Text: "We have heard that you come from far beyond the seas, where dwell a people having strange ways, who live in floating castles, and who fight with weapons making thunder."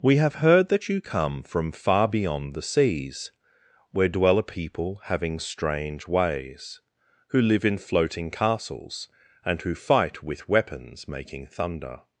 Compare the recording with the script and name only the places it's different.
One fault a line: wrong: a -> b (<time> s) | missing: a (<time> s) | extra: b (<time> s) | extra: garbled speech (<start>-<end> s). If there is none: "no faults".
no faults